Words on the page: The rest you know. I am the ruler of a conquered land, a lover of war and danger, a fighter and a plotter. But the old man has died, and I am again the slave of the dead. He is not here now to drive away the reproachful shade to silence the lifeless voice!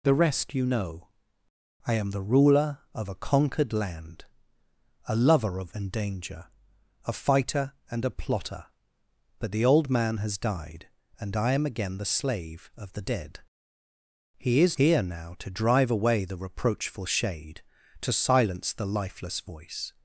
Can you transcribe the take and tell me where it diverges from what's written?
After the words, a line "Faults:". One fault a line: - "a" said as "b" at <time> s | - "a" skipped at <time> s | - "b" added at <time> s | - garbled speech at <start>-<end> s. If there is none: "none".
The rest you know. I am the ruler of a conquered land, a lover of and danger, a fighter and a plotter. But the old man has died, and I am again the slave of the dead. He is here now to drive away the reproachful shade to silence the lifeless voice!
Faults:
- "war" skipped at 5.8 s
- "not" skipped at 14.8 s